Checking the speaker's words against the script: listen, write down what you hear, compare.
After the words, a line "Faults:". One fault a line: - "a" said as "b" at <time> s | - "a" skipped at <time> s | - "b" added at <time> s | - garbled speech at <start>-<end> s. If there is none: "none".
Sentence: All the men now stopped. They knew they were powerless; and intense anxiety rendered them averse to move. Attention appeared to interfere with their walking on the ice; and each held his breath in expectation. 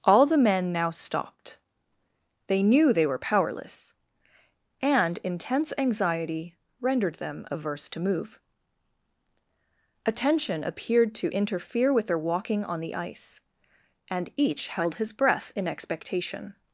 All the men now stopped. They knew they were powerless; and intense anxiety rendered them averse to move. Attention appeared to interfere with their walking on the ice; and each held his breath in expectation.
Faults:
none